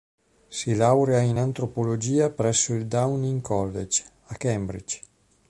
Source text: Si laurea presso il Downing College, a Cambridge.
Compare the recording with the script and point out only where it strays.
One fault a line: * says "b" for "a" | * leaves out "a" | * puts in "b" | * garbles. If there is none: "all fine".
* puts in "in antropologia"